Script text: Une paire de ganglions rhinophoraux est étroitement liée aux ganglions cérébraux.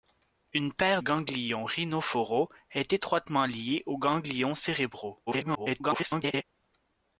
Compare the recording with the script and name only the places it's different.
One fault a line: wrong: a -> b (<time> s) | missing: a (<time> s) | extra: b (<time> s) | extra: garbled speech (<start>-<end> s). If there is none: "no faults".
missing: de (1.0 s)
extra: garbled speech (5.3-6.4 s)